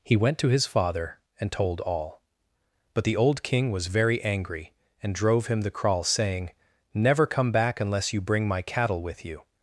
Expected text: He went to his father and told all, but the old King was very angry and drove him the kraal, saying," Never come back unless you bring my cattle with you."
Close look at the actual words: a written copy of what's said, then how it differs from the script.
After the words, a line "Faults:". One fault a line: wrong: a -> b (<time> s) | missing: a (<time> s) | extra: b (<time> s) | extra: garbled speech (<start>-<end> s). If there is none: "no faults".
He went to his father and told all, but the old King was very angry and drove him the kraal, saying," Never come back unless you bring my cattle with you."
Faults:
no faults